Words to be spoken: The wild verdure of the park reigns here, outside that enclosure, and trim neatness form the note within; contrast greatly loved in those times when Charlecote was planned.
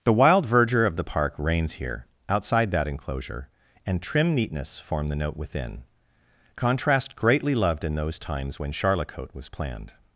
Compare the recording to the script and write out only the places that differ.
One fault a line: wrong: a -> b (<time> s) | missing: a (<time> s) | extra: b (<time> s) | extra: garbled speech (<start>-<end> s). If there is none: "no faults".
no faults